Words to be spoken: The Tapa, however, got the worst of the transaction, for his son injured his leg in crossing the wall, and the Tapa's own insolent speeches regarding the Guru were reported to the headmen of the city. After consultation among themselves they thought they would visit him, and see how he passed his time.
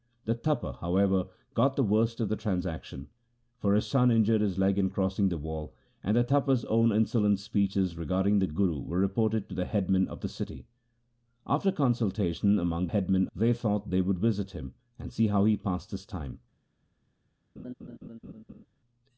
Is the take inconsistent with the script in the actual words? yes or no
yes